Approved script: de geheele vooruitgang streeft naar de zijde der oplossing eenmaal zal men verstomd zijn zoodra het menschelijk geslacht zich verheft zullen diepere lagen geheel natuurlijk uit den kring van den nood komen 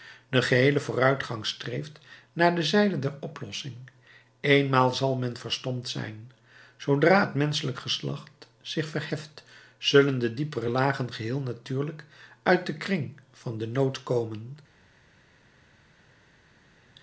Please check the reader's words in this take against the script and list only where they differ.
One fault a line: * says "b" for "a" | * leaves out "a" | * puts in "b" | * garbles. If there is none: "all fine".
* puts in "de"